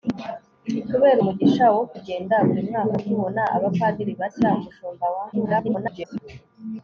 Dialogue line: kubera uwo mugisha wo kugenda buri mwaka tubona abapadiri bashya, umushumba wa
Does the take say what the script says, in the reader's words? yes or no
no